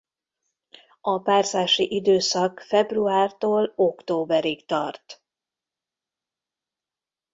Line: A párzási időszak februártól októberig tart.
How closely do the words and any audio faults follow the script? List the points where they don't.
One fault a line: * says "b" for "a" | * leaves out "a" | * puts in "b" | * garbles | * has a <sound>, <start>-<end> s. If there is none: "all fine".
all fine